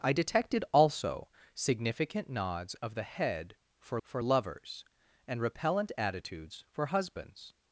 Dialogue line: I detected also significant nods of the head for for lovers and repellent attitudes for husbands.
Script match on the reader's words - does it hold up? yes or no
yes